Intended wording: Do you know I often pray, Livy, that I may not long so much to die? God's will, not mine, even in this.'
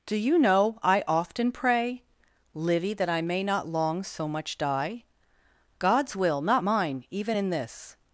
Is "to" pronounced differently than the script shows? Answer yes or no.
yes